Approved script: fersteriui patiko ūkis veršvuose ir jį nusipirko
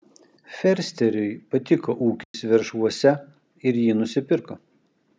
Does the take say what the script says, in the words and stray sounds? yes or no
no